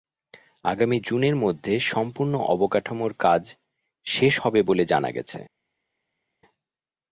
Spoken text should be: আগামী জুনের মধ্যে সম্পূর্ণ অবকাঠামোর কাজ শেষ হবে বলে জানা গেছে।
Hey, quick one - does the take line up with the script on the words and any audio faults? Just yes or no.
yes